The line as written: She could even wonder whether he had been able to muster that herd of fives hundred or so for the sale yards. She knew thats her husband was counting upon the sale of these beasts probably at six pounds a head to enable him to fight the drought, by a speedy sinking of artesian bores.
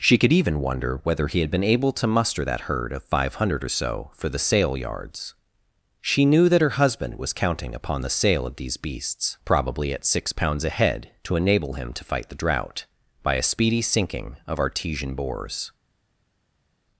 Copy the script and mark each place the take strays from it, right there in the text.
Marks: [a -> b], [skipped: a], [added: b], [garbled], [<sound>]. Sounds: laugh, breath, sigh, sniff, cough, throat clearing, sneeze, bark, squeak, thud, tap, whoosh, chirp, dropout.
She could even wonder whether he had been able to muster that herd of [fives -> five] hundred or so for the sale yards. She knew [thats -> that] her husband was counting upon the sale of these beasts probably at six pounds a head to enable him to fight the drought, by a speedy sinking of artesian bores.